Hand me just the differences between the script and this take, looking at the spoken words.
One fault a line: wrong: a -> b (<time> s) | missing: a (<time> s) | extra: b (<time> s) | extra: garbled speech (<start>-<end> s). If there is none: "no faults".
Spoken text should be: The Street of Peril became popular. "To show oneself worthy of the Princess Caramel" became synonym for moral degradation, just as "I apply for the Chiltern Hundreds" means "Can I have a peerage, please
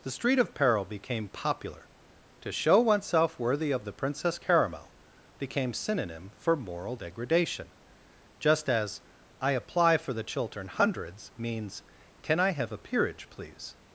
no faults